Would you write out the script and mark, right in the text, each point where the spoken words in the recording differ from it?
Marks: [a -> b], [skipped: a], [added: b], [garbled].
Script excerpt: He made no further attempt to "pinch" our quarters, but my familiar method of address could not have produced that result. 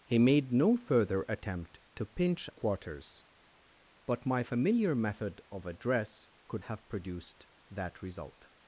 He made no further attempt to "pinch" [skipped: our] quarters, but my familiar method of address could [skipped: not] have produced that result.